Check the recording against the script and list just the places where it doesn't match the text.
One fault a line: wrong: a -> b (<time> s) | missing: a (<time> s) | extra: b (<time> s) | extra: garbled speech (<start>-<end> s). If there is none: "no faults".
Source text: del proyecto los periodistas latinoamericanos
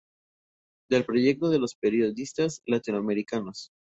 extra: de (1.5 s)